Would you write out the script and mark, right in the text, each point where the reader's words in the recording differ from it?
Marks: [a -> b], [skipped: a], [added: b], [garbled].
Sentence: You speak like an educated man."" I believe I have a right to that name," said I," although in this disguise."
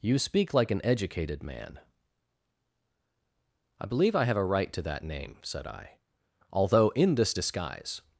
You speak like an educated man."" I believe I have a right to that name," said I," although in this disguise."